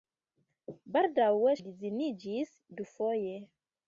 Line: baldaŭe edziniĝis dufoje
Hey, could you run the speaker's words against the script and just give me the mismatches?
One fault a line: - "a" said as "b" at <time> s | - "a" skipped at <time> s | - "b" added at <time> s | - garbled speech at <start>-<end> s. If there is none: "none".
none